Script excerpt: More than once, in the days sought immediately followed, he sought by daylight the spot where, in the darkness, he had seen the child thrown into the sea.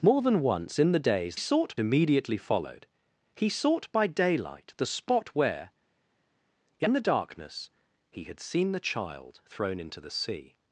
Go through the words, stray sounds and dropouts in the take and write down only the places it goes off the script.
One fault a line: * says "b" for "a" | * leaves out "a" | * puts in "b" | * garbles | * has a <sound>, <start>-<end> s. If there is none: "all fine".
all fine